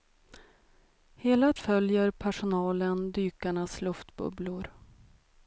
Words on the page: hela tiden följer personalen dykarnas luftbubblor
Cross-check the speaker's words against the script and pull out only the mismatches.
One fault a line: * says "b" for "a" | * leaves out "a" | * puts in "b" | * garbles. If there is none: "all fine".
* leaves out "tiden"